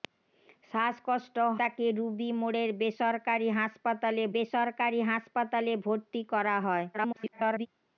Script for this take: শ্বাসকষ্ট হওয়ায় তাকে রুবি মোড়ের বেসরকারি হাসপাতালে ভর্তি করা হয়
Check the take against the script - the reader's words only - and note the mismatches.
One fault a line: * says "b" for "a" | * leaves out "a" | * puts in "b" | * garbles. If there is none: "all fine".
* leaves out "হওয়ায়"
* puts in "বেসরকারি হাসপাতালে"
* garbles